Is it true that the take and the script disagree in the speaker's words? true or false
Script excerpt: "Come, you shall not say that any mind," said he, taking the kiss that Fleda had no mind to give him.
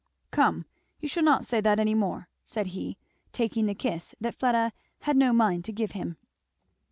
true